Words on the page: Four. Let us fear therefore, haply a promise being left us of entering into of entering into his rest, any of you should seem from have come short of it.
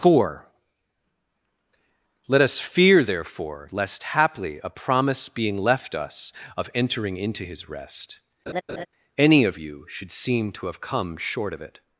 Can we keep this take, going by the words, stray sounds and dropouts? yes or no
no